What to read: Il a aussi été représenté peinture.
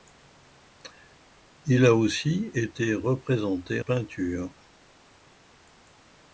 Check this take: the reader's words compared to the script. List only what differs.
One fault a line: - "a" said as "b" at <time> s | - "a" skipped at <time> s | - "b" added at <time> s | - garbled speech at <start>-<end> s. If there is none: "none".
none